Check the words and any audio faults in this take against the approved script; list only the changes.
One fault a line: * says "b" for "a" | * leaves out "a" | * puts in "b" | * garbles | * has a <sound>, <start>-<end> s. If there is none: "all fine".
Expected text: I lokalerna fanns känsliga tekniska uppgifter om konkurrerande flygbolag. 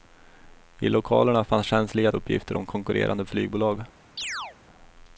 * leaves out "tekniska"
* has a chirp, 4.2-4.6 s